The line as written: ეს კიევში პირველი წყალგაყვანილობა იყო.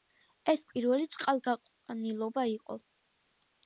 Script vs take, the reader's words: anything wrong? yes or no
yes